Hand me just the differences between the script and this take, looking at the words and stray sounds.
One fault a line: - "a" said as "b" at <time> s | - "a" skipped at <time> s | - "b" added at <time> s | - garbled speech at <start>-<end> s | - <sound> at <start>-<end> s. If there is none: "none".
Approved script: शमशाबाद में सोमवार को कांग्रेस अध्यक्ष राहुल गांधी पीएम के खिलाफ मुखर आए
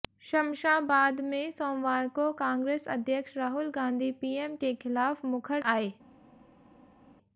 none